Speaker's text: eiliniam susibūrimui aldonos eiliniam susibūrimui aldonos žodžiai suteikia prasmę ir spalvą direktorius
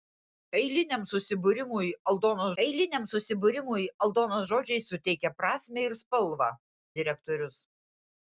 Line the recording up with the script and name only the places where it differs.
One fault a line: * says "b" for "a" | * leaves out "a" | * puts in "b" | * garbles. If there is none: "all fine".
all fine